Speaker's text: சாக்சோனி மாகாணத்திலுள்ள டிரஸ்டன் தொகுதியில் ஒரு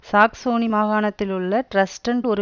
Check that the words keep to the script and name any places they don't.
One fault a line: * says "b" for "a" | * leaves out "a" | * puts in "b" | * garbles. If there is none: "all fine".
* leaves out "தொகுதியில்"